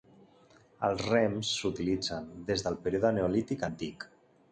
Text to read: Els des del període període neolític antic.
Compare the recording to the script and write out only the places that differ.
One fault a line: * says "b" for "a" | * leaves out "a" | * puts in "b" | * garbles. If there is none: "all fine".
* puts in "rems s'utilitzen"
* leaves out "període"